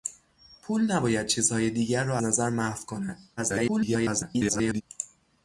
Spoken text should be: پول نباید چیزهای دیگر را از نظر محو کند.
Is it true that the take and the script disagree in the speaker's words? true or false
true